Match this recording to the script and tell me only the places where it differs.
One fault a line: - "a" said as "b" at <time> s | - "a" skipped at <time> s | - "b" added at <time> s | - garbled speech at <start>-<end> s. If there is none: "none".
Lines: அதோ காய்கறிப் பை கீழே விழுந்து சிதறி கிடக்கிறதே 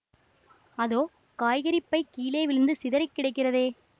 none